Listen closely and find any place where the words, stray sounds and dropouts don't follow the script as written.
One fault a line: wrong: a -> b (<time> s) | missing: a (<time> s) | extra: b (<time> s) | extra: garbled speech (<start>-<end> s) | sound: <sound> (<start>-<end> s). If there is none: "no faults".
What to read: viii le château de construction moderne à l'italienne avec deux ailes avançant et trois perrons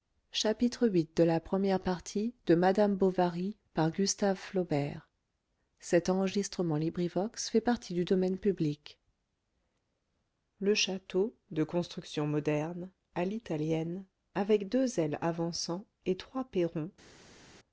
no faults